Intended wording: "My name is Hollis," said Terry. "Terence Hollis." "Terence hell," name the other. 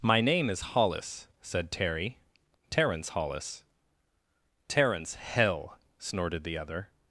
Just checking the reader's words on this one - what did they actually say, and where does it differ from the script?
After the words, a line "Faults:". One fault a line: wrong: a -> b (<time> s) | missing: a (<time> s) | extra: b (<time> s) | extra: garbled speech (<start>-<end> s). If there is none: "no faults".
"My name is Hollis," said Terry. "Terence Hollis." "Terence hell," snorted the other.
Faults:
wrong: name -> snorted (6.0 s)